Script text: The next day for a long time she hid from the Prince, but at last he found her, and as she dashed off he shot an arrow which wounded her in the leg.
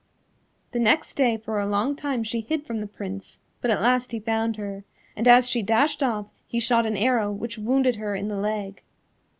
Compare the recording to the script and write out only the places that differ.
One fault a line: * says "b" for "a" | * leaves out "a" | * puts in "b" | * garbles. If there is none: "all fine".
all fine